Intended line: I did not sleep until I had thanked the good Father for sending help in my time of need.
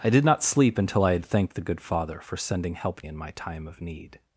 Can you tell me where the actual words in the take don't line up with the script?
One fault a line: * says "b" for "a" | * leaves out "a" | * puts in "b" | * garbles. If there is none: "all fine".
all fine